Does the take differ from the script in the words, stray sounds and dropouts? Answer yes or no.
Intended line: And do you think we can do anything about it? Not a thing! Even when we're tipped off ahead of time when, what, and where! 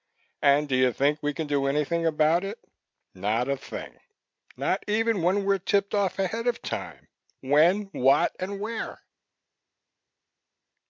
yes